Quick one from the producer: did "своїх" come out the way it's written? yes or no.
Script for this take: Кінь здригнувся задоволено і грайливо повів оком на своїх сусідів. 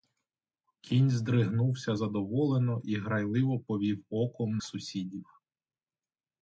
no